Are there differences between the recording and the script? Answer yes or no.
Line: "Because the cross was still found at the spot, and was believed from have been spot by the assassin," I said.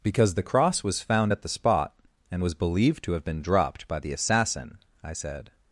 yes